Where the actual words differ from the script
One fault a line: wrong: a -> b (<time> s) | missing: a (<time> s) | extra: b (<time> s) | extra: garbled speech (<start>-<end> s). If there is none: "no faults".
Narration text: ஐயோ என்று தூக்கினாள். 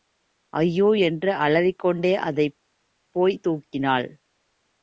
extra: அலறிக்கொண்டே அதைப் போய்த் (1.4 s)